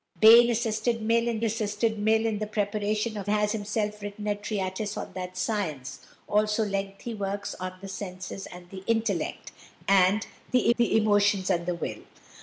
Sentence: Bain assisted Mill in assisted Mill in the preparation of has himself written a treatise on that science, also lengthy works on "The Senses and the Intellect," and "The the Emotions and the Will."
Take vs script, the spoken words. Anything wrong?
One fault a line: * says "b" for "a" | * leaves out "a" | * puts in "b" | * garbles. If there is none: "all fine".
all fine